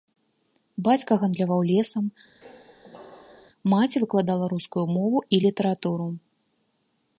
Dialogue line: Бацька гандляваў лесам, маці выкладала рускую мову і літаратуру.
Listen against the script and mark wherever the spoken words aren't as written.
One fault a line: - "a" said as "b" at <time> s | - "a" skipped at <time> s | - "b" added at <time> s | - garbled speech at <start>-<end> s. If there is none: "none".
none